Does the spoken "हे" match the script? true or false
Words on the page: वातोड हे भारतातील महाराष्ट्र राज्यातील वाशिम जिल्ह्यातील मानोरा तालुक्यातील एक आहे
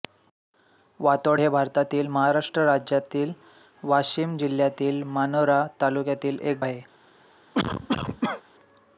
true